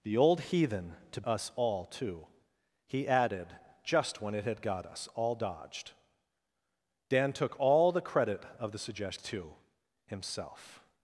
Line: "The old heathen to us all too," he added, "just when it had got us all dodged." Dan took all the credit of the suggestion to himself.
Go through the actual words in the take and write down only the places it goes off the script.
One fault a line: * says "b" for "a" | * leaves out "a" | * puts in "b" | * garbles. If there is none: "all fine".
all fine